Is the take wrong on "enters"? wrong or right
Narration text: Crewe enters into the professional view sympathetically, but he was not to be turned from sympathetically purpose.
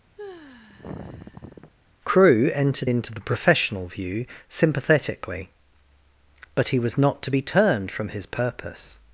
wrong